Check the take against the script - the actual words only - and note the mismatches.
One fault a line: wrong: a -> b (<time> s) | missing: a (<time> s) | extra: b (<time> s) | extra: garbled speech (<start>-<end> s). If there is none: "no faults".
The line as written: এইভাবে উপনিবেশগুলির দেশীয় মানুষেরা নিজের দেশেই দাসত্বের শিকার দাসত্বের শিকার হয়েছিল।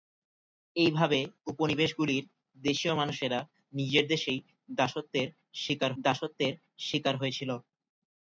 no faults